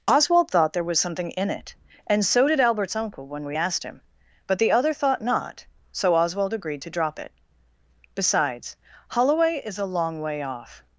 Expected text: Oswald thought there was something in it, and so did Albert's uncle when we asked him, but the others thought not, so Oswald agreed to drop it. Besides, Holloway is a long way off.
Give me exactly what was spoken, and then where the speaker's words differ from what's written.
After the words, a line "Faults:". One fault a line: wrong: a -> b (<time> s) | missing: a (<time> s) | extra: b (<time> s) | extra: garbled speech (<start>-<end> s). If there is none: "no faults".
Oswald thought there was something in it, and so did Albert's uncle when we asked him, but the other thought not, so Oswald agreed to drop it. Besides, Holloway is a long way off.
Faults:
wrong: others -> other (4.7 s)